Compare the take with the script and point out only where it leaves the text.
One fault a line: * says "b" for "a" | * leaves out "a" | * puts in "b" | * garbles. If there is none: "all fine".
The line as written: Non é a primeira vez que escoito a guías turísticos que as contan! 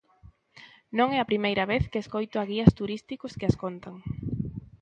all fine